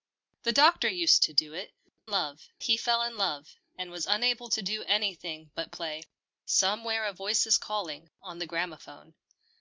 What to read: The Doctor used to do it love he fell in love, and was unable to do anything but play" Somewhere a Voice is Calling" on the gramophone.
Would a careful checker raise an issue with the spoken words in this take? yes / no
no